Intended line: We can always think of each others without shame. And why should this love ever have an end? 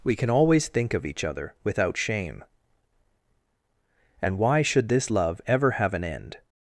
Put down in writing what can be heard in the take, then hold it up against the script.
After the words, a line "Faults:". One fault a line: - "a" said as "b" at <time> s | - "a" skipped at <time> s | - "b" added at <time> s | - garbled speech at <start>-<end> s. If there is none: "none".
We can always think of each other without shame. And why should this love ever have an end?
Faults:
- "others" said as "other" at 1.2 s